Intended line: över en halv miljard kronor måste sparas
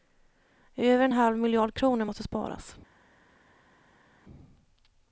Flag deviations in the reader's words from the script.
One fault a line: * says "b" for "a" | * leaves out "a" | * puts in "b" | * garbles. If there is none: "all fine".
all fine